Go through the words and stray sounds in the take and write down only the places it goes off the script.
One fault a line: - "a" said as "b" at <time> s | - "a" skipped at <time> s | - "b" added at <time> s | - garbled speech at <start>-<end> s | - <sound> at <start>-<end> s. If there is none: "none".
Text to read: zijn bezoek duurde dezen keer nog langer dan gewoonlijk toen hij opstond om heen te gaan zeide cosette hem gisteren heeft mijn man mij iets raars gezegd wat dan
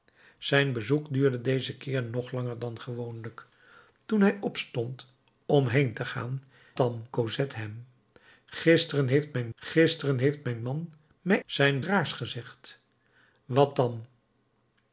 - "zeide" said as "dan" at 6.8 s
- "gisteren heeft mijn" added at 9.5 s
- "iets" said as "zijn" at 11.4 s